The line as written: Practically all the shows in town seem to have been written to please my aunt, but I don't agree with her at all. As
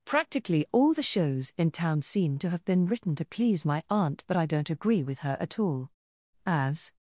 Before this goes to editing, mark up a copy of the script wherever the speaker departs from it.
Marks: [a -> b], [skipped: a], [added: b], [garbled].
Practically all the shows in town seem to have been written to please my aunt, but I don't agree with her at all. As